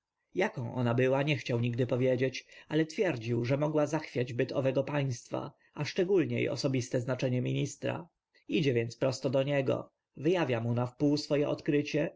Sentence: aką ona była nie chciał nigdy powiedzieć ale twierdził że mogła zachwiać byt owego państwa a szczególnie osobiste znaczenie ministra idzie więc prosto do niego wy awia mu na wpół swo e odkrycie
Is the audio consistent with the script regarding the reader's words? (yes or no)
yes